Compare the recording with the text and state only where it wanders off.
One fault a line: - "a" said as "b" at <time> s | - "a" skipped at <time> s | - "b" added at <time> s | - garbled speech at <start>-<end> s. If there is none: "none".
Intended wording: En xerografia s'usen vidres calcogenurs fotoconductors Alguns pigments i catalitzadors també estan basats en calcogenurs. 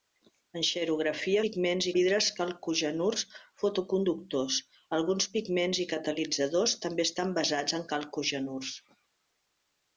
- "s'usen" said as "pigments" at 1.5 s